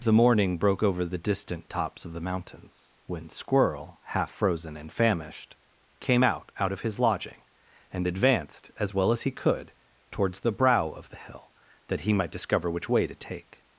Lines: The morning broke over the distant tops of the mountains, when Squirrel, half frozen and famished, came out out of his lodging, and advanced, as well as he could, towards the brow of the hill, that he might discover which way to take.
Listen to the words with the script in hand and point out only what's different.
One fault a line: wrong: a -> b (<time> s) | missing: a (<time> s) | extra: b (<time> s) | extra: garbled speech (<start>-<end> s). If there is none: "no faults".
no faults